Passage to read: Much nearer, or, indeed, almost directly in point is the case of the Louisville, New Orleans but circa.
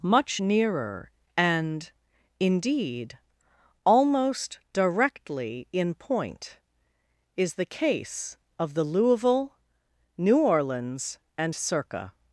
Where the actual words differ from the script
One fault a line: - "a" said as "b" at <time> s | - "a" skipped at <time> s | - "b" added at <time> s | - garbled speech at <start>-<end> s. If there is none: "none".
- "or" said as "and" at 1.4 s
- "but" said as "and" at 11.4 s